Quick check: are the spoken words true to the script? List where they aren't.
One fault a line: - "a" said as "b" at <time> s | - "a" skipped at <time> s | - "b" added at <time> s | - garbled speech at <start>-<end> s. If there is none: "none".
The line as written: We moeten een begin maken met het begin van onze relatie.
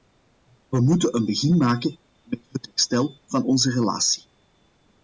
- "begin" said as "herstel" at 2.6 s